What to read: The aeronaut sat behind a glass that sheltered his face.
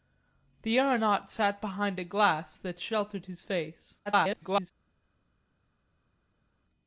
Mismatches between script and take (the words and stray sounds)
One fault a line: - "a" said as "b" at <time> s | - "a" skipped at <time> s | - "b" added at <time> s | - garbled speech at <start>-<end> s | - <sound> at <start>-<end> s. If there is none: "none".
- garbled speech at 4.1-4.7 s